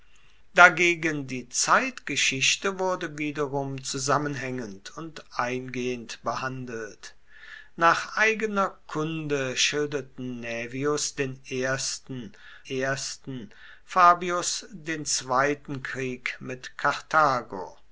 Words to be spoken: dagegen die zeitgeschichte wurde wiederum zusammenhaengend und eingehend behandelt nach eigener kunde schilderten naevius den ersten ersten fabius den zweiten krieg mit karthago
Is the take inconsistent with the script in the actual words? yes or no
no